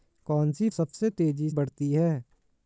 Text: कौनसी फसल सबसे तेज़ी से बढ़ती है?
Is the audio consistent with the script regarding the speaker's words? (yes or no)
no